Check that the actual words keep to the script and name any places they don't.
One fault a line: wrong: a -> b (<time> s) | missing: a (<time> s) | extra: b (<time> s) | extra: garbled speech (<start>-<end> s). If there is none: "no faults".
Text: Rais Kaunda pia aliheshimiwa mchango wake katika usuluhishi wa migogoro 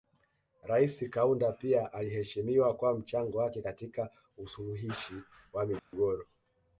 extra: kwa (2.8 s)